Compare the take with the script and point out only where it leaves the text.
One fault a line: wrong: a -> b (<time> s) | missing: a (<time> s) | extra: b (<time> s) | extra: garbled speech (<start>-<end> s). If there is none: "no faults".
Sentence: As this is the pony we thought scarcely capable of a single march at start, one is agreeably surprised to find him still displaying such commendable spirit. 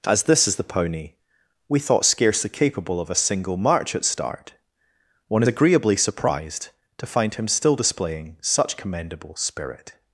missing: is (5.4 s)